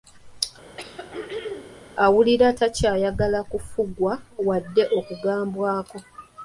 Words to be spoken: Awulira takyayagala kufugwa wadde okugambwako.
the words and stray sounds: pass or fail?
fail